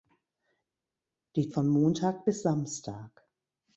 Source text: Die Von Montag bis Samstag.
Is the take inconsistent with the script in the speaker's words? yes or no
no